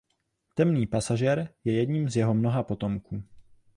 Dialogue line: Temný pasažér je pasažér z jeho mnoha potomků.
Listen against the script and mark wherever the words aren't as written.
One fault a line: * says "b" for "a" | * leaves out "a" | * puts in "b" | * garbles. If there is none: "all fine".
* says "jedním" for "pasažér"